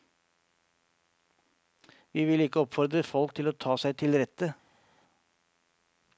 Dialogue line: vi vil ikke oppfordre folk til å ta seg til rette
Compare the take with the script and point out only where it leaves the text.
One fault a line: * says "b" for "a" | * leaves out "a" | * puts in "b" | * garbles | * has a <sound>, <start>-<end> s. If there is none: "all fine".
all fine